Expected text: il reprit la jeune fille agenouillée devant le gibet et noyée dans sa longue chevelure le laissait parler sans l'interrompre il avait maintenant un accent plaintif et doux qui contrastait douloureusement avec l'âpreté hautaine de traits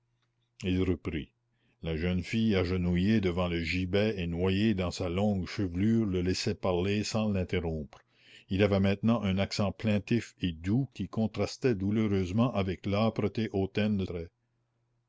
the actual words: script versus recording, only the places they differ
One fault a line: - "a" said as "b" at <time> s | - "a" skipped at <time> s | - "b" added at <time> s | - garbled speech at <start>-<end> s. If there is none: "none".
none